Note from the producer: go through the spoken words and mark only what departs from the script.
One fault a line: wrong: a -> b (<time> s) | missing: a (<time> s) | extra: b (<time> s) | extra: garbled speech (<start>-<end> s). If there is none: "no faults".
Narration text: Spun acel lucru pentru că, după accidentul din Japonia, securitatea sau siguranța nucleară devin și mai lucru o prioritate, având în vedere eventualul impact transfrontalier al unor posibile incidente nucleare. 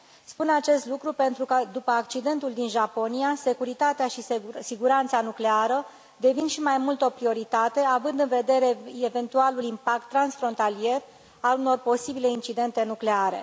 wrong: acel -> acest (0.5 s)
wrong: sau -> și (4.1 s)
wrong: lucru -> mult (6.8 s)